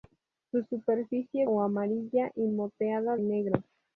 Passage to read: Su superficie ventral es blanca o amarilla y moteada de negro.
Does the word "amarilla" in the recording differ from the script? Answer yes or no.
no